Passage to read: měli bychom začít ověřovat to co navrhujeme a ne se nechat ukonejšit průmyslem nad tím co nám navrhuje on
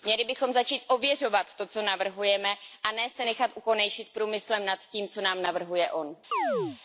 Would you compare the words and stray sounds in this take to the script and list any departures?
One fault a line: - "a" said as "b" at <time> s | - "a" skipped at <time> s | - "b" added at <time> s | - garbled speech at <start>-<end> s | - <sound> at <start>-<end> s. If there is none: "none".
- chirp at 6.3-6.8 s